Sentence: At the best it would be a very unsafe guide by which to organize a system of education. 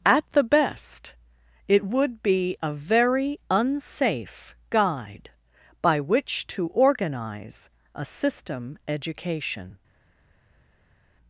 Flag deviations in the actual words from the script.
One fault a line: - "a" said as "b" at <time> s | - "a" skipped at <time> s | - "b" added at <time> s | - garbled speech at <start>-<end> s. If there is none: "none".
- "of" skipped at 8.8 s